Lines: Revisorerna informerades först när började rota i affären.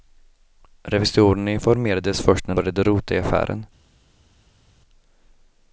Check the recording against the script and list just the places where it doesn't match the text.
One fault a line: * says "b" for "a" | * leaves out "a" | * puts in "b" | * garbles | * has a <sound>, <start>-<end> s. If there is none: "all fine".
all fine